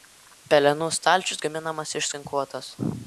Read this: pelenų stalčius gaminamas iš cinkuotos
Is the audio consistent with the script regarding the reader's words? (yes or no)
yes